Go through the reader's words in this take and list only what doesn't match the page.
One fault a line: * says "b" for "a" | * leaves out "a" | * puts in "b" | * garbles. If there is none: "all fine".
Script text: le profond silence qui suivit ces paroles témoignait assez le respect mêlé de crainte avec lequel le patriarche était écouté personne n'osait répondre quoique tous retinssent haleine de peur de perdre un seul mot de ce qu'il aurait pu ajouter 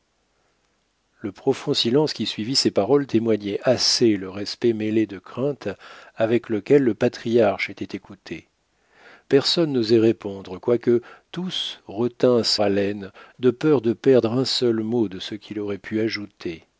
all fine